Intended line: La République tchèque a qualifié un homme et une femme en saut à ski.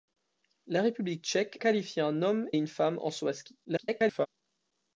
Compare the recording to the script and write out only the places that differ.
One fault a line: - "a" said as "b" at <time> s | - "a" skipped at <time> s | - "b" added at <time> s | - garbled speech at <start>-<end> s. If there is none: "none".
- "a" skipped at 1.6 s
- "et" skipped at 2.5 s
- garbled speech at 3.6-4.3 s